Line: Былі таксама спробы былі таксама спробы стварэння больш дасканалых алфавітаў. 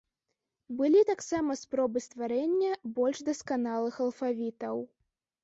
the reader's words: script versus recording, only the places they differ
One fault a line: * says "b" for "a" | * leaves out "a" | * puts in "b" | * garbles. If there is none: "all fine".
* leaves out "былі таксама спробы"